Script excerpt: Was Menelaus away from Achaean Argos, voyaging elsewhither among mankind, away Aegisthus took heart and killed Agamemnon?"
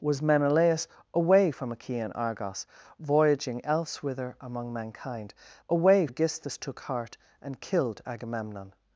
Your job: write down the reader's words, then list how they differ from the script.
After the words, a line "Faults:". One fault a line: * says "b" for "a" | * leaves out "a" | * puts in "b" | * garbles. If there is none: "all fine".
Was Menelaus away from Achaean Argos, voyaging elsewhither among mankind, away Aegisthus took heart and killed Agamemnon?"
Faults:
all fine